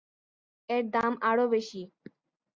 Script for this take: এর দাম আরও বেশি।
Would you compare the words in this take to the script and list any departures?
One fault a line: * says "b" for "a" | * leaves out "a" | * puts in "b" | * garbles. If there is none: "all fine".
all fine